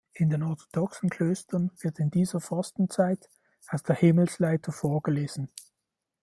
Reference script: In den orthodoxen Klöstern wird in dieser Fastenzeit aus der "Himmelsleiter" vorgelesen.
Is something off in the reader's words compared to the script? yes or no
no